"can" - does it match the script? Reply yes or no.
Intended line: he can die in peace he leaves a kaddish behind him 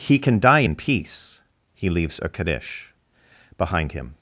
yes